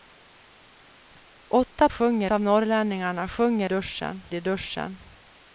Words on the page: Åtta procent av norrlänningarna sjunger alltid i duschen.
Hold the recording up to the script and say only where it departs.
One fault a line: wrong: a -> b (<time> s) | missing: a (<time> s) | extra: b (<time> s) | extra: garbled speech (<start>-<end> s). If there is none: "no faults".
wrong: procent -> sjunger (1.9 s)
wrong: alltid -> duschen (3.6 s)